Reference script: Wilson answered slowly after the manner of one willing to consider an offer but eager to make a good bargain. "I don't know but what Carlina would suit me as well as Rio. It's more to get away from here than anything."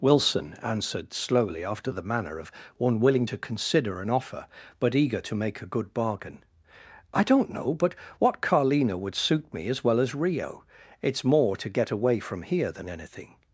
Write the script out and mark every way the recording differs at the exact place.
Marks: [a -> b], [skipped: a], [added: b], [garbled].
Wilson answered slowly after the manner of one willing to consider an offer but eager to make a good bargain. "I don't know but what Carlina would suit me as well as Rio. It's more to get away from here than anything."